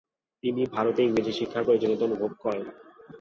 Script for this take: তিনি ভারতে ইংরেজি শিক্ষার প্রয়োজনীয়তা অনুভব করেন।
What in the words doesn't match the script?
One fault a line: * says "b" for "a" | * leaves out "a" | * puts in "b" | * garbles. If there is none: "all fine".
all fine